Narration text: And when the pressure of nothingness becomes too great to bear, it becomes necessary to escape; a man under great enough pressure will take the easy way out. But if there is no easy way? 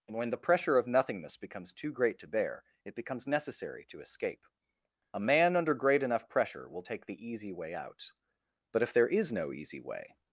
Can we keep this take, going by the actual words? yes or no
yes